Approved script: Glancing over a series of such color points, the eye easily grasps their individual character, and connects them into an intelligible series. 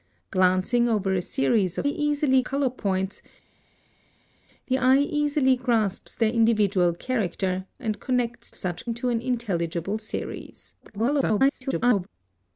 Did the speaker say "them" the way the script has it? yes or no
no